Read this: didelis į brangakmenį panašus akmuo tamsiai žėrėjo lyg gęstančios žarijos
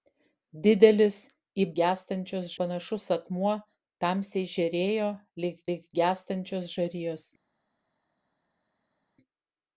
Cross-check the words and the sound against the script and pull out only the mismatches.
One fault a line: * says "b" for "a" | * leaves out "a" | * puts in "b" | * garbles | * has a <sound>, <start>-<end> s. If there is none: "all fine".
* says "gęstančios" for "brangakmenį"
* puts in "lyg"